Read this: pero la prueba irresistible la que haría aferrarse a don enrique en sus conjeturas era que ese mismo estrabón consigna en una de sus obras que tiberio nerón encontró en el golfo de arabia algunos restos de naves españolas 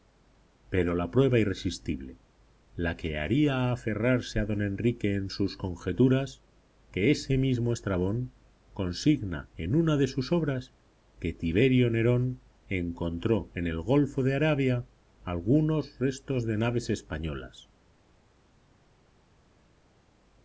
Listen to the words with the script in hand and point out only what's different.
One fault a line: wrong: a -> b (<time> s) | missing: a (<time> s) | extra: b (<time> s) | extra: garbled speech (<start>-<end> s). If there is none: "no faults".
missing: era (6.4 s)